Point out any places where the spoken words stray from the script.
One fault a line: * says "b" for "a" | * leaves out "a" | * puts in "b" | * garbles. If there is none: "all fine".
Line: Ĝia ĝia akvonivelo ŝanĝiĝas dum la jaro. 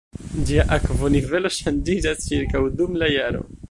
* leaves out "ĝia"
* puts in "ĉirkaŭ"